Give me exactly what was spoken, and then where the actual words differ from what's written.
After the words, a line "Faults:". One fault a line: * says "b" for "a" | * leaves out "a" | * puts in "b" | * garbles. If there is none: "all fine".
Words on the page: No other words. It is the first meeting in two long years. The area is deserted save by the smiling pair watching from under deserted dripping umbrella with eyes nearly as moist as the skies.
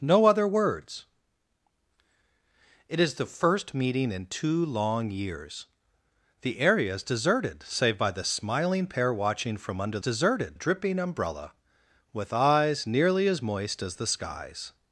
No other words. It is the first meeting in two long years. The area is deserted save by the smiling pair watching from under deserted dripping umbrella with eyes nearly as moist as the skies.
Faults:
all fine